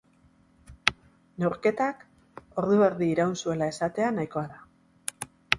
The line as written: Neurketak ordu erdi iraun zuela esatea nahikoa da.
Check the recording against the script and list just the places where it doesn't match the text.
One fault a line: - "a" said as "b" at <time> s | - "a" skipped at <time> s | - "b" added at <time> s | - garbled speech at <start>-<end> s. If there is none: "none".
none